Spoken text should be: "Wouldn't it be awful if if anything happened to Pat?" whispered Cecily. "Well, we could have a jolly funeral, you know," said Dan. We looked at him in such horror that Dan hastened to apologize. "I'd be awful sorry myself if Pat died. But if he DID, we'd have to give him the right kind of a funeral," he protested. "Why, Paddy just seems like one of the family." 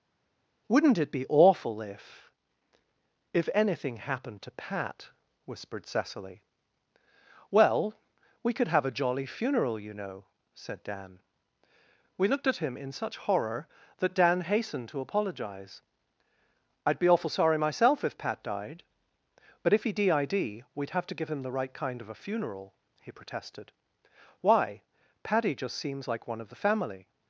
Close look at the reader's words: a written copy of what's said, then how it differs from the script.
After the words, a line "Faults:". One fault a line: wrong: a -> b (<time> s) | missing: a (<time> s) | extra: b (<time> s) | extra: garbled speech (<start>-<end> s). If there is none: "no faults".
"Wouldn't it be awful if if anything happened to Pat?" whispered Cecily. "Well, we could have a jolly funeral, you know," said Dan. We looked at him in such horror that Dan hastened to apologize. "I'd be awful sorry myself if Pat died. But if he DID, we'd have to give him the right kind of a funeral," he protested. "Why, Paddy just seems like one of the family."
Faults:
no faults